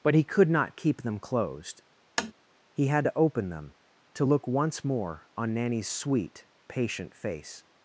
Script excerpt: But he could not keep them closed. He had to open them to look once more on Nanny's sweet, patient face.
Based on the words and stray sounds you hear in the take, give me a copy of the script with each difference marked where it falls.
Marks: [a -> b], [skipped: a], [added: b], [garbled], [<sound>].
But he could not keep them closed. [tap] He had to open them to look once more on Nanny's sweet, patient face.